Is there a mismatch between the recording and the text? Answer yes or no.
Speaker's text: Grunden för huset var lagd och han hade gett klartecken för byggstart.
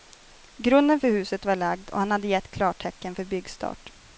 no